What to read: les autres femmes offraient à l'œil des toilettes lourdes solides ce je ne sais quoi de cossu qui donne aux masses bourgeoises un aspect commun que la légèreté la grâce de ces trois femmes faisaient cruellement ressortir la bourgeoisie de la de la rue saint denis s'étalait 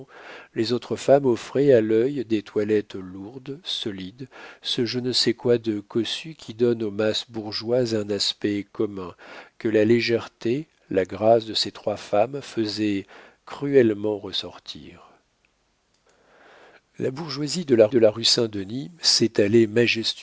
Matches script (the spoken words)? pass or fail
pass